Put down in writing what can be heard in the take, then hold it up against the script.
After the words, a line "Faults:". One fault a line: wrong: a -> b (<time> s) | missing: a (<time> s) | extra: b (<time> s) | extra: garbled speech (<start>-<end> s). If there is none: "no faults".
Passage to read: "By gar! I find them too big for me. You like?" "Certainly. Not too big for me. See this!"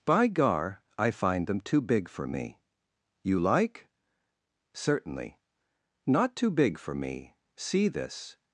"By gar! I find them too big for me. You like?" "Certainly. Not too big for me. See this!"
Faults:
no faults